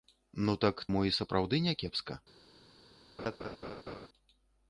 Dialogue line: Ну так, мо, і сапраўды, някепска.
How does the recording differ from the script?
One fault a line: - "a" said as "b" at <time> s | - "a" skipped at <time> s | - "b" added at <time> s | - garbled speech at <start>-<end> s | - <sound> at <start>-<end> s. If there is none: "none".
- laugh at 3.2-4.1 s